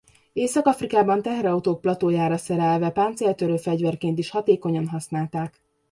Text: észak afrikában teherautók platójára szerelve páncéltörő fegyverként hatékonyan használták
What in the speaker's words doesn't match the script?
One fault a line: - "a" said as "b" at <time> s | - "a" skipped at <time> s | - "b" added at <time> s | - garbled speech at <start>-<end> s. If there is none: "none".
- "is" added at 4.2 s